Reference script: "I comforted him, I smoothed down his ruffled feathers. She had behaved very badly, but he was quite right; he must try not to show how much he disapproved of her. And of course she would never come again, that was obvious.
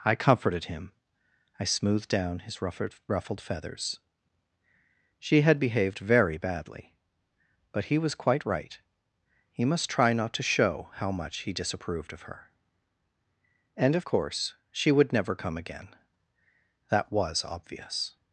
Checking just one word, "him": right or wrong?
right